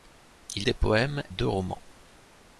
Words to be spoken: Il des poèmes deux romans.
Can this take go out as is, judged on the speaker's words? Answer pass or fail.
pass